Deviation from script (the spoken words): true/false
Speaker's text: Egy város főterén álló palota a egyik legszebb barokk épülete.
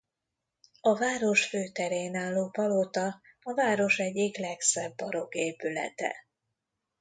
true